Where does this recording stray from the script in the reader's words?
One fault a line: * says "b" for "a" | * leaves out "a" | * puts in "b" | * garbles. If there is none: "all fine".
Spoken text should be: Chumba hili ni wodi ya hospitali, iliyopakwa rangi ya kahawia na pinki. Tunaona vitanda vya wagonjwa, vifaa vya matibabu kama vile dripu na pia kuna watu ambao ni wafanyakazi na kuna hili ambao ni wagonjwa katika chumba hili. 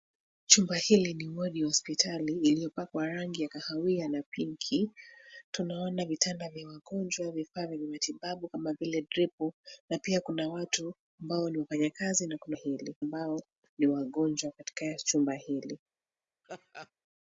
all fine